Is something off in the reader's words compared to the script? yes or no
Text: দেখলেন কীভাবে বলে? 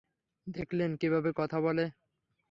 yes